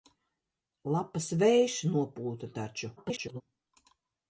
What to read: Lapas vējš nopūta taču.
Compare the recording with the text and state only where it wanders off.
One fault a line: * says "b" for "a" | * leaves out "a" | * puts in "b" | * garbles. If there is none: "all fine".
* garbles